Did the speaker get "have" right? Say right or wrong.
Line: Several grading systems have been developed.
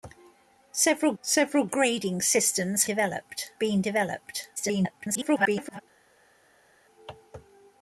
wrong